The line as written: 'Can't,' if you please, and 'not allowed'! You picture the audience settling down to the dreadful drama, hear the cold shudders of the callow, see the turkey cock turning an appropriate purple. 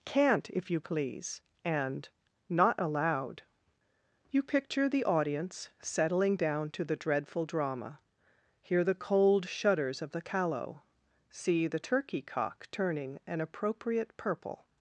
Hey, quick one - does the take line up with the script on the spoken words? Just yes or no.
yes